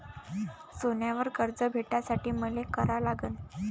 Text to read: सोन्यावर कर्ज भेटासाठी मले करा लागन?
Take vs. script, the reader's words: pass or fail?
pass